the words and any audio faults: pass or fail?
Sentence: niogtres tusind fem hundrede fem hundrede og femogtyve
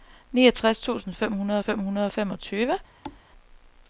fail